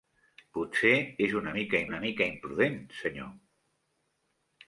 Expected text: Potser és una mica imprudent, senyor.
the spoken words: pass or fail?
fail